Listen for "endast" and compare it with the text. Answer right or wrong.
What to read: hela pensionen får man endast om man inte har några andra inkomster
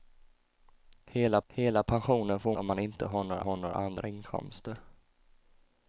wrong